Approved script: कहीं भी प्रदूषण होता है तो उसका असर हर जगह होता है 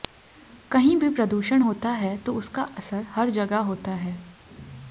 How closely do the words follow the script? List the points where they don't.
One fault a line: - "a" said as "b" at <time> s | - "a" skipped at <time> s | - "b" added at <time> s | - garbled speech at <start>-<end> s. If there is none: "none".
none